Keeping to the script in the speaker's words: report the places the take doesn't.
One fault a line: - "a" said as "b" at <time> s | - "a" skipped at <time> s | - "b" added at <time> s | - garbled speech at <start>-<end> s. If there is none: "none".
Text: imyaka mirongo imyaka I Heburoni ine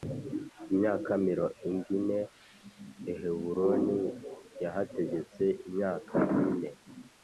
- "imyaka" said as "ine" at 2.0 s
- "yahategetse imyaka" added at 4.6 s